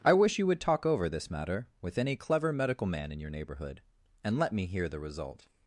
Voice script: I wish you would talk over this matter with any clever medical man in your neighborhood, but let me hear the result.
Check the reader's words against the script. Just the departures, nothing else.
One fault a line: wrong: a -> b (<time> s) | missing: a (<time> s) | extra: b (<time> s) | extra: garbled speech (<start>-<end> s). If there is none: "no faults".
wrong: but -> and (4.2 s)